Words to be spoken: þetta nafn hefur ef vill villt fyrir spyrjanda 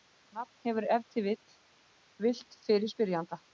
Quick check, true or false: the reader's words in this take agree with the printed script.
false